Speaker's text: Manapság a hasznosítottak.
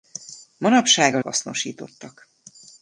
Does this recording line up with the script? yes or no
yes